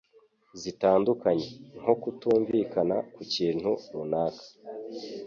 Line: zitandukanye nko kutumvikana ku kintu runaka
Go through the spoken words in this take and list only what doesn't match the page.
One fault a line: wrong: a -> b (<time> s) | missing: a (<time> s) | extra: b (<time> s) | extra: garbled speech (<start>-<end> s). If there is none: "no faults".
no faults